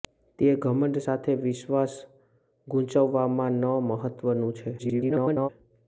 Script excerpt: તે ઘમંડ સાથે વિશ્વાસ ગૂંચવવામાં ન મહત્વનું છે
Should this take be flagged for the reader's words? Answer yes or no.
yes